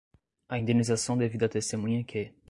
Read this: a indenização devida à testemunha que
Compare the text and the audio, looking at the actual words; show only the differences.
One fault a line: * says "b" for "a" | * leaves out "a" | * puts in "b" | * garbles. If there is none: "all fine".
all fine